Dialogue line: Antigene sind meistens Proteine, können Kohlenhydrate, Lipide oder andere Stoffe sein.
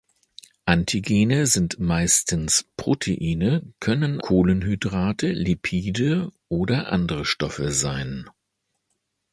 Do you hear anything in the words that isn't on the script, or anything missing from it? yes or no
no